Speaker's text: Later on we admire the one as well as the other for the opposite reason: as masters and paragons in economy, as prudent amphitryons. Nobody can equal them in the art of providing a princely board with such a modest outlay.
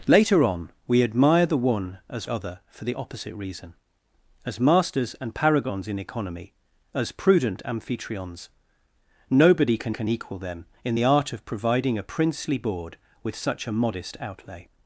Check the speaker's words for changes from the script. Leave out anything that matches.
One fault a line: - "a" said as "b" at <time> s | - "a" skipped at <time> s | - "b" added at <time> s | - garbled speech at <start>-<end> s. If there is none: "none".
- "well as the" skipped at 2.3 s
- "can" added at 9.9 s